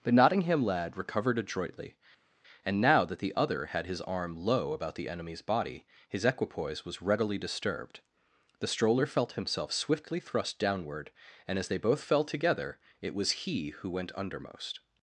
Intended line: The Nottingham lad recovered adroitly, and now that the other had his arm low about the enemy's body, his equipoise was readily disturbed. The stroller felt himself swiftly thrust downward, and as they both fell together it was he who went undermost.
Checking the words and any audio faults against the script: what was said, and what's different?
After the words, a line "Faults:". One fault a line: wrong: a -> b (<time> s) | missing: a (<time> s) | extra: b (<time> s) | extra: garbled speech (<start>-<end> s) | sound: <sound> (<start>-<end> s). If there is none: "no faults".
The Nottingham lad recovered adroitly, and now that the other had his arm low about the enemy's body, his equipoise was readily disturbed. The stroller felt himself swiftly thrust downward, and as they both fell together it was he who went undermost.
Faults:
no faults